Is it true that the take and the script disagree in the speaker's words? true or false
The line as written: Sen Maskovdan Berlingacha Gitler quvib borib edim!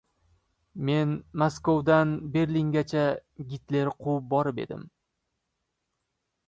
true